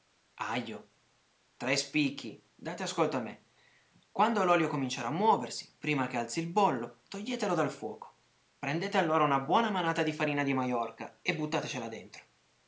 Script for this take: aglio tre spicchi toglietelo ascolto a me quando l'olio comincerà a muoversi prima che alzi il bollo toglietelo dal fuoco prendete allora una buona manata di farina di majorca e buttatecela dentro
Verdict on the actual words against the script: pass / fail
fail